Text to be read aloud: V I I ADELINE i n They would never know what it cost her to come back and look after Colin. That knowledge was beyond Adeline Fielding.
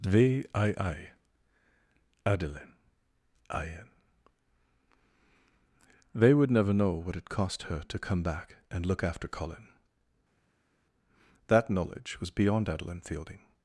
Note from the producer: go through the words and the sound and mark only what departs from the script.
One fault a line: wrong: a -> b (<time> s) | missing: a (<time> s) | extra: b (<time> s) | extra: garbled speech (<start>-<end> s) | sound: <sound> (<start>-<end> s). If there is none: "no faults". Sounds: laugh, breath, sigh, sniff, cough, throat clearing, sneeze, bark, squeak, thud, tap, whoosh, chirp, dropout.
no faults